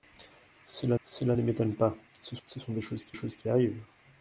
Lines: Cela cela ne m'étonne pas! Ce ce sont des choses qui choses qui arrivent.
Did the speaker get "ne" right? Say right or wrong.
right